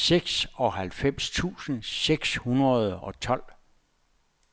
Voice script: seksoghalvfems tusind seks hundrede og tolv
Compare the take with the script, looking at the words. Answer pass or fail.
pass